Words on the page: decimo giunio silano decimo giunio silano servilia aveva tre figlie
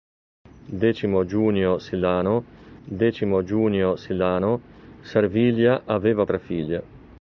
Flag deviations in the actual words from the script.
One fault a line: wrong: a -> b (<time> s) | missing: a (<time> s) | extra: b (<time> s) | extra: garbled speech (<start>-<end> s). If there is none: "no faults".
no faults